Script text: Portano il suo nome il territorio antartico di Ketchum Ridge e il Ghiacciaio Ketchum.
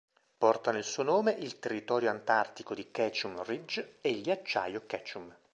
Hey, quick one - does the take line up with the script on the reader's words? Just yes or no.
yes